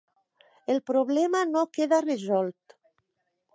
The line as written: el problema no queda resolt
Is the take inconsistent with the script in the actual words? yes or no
no